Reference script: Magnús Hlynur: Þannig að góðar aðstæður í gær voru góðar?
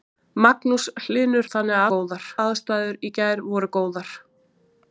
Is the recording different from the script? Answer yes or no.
no